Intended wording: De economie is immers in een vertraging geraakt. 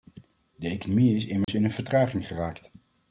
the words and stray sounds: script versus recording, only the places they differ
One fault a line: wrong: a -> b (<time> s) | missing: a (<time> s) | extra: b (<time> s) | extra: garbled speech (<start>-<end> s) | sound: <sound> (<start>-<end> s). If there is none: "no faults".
sound: dropout (1.4-1.5 s)